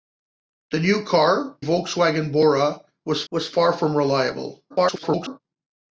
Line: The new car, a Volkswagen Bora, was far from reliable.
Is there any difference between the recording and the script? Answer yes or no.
yes